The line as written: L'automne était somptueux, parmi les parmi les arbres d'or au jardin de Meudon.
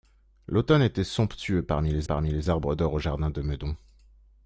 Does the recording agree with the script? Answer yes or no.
yes